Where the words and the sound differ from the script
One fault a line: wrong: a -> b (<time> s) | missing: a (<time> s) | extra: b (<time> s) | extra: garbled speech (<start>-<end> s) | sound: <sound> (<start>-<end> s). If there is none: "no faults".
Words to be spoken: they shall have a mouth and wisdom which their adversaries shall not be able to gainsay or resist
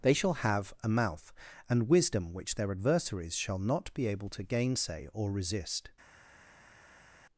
no faults